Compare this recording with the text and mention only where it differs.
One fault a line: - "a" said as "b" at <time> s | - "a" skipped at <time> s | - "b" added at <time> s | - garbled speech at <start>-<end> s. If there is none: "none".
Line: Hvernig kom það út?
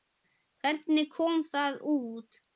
none